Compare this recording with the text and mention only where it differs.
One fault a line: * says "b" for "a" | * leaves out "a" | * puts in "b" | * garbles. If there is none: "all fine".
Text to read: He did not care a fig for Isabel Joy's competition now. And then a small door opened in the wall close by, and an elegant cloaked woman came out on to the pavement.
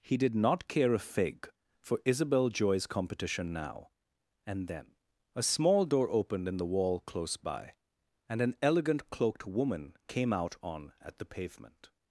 * says "at" for "to"